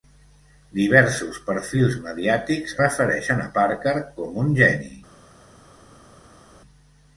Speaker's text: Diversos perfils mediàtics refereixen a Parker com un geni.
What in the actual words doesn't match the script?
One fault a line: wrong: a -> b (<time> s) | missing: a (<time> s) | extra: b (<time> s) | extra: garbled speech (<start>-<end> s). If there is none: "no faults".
no faults